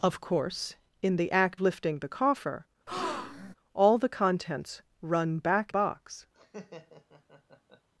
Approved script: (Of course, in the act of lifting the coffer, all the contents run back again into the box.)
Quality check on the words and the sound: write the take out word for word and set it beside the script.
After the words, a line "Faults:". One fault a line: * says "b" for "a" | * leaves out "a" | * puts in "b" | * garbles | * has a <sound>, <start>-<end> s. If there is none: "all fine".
(Of course, in the act lifting the coffer, all the contents run back box.)
Faults:
* leaves out "of"
* has a breath, 2.9-3.5 s
* leaves out "again into the"
* has a laugh, 6.3-7.9 s